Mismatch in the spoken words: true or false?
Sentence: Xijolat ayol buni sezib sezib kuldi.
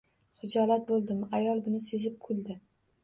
true